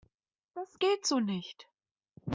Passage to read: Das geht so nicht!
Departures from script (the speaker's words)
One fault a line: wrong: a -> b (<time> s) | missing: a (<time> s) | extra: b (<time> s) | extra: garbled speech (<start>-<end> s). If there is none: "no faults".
no faults